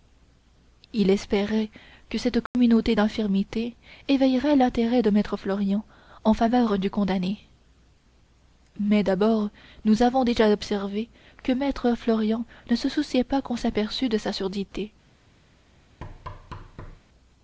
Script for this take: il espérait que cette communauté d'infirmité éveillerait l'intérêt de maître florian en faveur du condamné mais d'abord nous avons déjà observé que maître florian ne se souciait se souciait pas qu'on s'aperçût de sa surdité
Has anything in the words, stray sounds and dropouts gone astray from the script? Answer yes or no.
yes